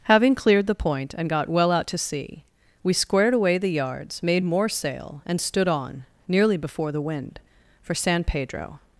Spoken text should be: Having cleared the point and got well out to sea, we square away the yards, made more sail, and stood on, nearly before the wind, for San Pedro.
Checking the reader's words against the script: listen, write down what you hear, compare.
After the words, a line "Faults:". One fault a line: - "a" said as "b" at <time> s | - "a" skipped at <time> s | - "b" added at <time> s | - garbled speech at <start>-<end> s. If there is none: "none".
Having cleared the point and got well out to sea, we squared away the yards, made more sail, and stood on, nearly before the wind, for San Pedro.
Faults:
- "square" said as "squared" at 2.9 s